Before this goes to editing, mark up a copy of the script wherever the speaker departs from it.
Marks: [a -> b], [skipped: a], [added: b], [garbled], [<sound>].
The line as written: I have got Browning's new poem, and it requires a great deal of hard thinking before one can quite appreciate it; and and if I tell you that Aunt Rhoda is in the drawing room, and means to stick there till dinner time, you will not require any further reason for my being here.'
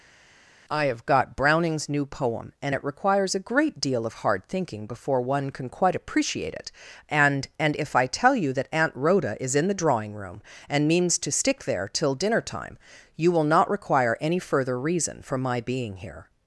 I have got Browning's new poem, and it requires a great deal of hard thinking before one can quite appreciate it; and and if I tell you that Aunt Rhoda is in the drawing room, and means to stick there till dinner time, you will not require any further reason for my being here.'